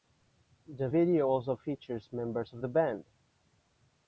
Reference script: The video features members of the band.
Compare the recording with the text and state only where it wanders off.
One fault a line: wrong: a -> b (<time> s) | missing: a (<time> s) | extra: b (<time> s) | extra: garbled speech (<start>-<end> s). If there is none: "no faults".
extra: also (1.3 s)